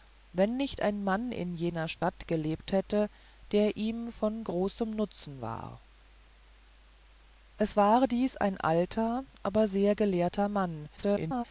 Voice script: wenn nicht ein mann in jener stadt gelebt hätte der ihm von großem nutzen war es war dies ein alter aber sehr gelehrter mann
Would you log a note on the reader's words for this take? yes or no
yes